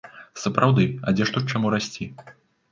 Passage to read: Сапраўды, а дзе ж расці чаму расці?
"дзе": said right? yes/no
yes